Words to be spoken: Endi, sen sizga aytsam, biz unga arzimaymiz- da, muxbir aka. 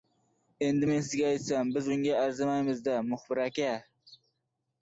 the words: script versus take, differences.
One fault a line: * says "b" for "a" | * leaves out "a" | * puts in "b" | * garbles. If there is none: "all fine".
* says "men" for "sen"